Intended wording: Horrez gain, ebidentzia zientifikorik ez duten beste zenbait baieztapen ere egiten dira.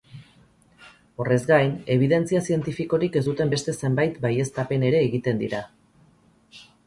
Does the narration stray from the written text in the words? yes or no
no